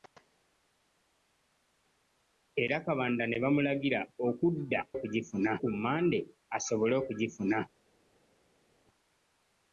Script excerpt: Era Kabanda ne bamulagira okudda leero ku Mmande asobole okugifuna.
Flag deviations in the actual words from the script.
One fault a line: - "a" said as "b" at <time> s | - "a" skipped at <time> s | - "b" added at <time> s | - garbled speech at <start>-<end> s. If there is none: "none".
- "leero" said as "okugifuna" at 5.0 s